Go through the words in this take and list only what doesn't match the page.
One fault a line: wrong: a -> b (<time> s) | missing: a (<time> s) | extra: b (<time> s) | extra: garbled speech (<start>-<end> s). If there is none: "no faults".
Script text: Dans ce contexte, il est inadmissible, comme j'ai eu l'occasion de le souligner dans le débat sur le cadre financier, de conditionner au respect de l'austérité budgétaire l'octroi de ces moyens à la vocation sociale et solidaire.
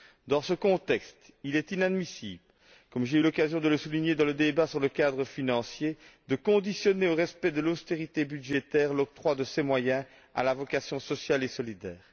no faults